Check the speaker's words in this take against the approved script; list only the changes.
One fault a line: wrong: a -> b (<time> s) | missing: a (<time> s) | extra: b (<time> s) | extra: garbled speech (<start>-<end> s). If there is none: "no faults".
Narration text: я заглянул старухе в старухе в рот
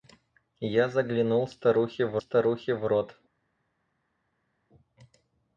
no faults